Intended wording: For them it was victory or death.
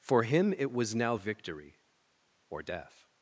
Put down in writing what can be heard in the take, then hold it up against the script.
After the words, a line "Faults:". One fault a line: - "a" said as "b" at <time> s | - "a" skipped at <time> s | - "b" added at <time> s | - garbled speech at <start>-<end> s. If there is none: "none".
For him it was now victory or death.
Faults:
- "them" said as "him" at 0.2 s
- "now" added at 0.9 s